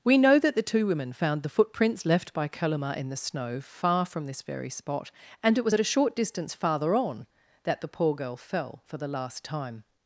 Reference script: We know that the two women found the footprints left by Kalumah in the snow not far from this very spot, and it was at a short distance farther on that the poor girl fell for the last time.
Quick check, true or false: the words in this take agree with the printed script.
false